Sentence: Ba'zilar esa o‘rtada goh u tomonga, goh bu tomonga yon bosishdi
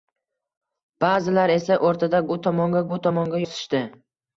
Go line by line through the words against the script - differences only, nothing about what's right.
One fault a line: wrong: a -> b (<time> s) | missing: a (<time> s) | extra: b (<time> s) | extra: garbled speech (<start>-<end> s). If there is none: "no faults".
missing: goh (2.2 s)
missing: goh (2.9 s)
missing: yon (3.5 s)